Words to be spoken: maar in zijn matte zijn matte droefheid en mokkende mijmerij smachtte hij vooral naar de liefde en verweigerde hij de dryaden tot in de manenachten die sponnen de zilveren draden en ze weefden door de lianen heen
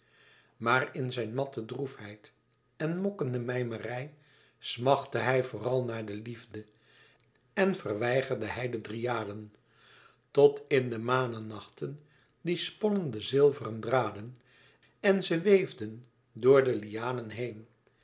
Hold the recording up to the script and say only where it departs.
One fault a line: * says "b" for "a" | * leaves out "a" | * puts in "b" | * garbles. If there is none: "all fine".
* leaves out "zijn matte"